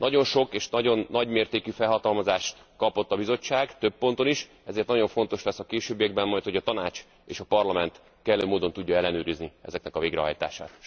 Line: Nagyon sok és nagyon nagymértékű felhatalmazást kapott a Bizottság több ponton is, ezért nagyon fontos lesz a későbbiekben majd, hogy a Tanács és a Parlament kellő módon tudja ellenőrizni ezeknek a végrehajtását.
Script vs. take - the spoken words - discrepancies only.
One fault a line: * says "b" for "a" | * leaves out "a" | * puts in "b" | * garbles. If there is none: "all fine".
all fine